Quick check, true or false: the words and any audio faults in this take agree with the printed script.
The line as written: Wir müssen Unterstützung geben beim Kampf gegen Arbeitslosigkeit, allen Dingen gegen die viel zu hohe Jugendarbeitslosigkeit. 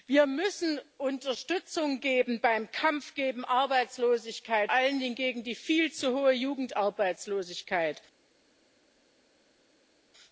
true